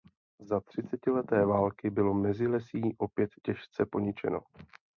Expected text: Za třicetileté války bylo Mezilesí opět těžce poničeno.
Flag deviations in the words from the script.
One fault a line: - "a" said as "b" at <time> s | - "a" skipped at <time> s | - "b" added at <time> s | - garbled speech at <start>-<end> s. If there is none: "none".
none